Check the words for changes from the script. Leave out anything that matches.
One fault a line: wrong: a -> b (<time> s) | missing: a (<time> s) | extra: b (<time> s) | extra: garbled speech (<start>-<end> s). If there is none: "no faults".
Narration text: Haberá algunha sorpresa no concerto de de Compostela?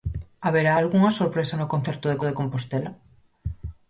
no faults